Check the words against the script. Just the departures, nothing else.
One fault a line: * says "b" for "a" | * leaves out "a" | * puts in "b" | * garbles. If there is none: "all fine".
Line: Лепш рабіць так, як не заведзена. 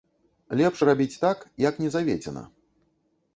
all fine